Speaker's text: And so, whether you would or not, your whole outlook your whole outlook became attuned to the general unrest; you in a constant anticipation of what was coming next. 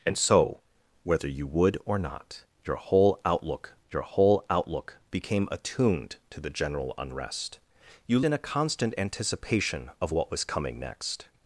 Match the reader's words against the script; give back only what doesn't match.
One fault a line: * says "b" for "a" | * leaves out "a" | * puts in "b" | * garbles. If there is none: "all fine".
all fine